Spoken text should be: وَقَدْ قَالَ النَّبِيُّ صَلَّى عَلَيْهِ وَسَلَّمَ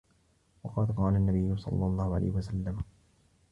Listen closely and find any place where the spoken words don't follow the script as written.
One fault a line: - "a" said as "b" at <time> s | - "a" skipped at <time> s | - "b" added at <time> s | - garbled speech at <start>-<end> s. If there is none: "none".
- "اللَّهُ" added at 1.9 s